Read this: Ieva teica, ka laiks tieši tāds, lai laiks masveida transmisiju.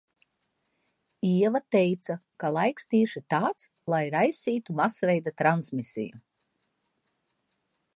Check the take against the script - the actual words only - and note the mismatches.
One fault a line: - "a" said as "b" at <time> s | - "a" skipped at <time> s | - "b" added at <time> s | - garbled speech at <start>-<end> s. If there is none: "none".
- "laiks" said as "raisītu" at 4.2 s